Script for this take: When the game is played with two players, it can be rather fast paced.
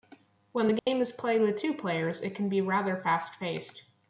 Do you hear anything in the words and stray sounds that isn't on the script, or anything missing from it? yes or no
yes